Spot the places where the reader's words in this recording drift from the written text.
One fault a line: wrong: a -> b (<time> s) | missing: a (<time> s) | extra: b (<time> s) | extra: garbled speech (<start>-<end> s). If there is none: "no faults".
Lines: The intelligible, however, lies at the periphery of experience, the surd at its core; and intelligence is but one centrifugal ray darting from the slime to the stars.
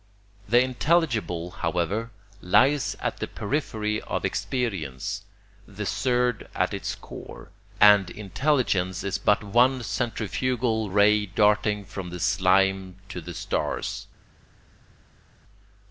no faults